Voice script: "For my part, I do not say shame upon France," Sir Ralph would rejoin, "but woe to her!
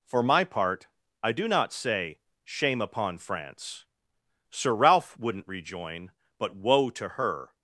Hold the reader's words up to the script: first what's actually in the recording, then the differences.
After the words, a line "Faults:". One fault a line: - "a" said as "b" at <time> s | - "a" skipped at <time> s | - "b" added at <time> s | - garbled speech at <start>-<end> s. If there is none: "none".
"For my part, I do not say shame upon France," Sir Ralph wouldn't rejoin, "but woe to her!
Faults:
- "would" said as "wouldn't" at 5.2 s